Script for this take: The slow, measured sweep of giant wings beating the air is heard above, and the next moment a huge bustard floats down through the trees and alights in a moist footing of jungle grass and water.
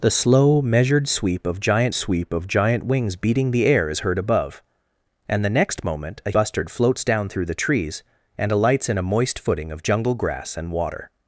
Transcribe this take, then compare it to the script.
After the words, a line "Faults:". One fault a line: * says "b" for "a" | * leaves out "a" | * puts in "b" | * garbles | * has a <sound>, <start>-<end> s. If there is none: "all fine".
The slow, measured sweep of giant sweep of giant wings beating the air is heard above, and the next moment a bustard floats down through the trees and alights in a moist footing of jungle grass and water.
Faults:
* puts in "sweep of giant"
* leaves out "huge"